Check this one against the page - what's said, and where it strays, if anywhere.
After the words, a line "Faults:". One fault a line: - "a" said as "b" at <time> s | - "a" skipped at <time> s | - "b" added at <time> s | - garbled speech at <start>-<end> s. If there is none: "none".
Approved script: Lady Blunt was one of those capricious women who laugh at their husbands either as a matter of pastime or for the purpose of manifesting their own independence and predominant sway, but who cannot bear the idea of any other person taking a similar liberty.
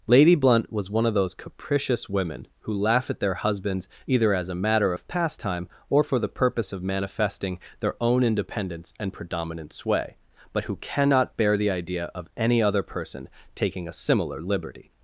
Lady Blunt was one of those capricious women who laugh at their husbands either as a matter of pastime or for the purpose of manifesting their own independence and predominant sway, but who cannot bear the idea of any other person taking a similar liberty.
Faults:
none